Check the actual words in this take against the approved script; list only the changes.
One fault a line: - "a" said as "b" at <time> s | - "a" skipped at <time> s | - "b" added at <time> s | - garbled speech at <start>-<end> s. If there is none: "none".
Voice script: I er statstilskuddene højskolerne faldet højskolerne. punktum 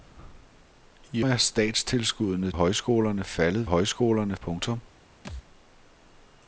none